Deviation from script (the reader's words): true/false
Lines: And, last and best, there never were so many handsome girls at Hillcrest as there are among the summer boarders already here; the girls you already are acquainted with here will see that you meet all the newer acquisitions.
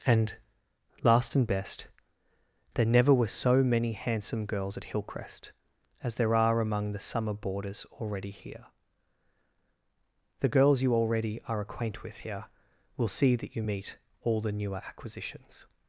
true